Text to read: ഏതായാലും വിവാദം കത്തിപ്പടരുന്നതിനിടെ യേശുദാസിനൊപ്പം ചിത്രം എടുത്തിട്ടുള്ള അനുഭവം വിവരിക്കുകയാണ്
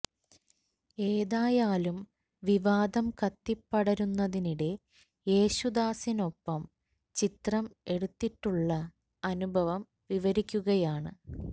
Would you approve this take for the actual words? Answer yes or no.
yes